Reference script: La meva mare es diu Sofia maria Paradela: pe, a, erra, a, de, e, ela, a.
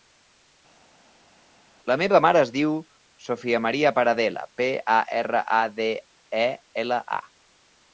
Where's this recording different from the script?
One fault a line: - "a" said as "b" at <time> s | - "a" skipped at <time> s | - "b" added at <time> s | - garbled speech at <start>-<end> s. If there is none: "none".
none